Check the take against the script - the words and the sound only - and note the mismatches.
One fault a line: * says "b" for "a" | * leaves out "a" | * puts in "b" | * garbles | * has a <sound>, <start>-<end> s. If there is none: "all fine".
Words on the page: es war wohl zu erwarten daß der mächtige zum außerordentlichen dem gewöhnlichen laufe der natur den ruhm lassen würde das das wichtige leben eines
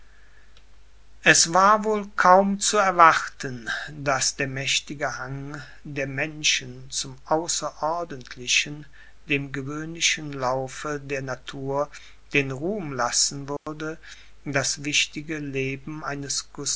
* puts in "kaum"
* puts in "hang der menschen"
* has a dropout, 13.6-13.7 s
* leaves out "das"